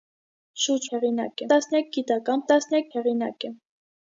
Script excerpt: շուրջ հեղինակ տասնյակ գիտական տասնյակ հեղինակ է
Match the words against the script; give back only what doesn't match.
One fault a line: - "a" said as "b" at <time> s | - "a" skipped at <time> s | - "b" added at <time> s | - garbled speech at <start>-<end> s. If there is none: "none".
none